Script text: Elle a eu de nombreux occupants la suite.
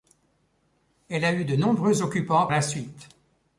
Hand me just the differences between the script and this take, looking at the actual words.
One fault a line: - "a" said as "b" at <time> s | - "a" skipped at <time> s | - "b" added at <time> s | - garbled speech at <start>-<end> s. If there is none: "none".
none